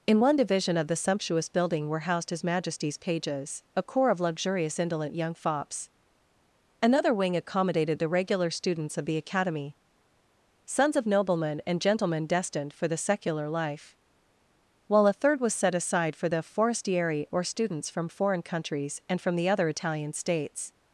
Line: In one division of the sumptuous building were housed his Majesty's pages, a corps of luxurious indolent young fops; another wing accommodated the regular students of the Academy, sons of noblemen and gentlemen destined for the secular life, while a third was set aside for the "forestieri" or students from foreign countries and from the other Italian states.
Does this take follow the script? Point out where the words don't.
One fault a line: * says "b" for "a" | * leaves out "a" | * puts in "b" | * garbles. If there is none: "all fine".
all fine